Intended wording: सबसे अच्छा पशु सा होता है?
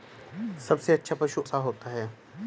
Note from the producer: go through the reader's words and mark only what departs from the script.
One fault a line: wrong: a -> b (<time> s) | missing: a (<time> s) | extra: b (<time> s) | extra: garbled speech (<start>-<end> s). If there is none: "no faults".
no faults